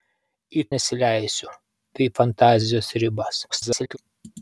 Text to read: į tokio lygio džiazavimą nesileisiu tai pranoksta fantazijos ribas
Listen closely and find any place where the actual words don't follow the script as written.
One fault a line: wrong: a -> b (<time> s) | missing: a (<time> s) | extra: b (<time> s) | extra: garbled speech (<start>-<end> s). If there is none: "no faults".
missing: tokio lygio džiazavimą (0.6 s)
missing: pranoksta (2.1 s)
extra: garbled speech (3.5-4.0 s)